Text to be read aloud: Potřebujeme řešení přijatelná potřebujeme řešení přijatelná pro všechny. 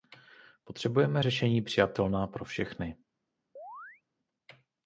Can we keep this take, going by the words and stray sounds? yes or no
no